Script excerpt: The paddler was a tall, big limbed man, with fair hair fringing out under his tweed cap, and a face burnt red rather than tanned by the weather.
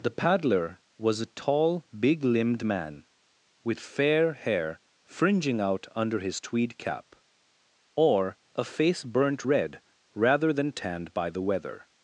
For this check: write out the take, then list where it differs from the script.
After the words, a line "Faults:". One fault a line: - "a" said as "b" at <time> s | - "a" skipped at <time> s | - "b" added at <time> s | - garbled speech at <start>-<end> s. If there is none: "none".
The paddler was a tall, big limbed man, with fair hair fringing out under his tweed cap, or a face burnt red rather than tanned by the weather.
Faults:
- "and" said as "or" at 8.0 s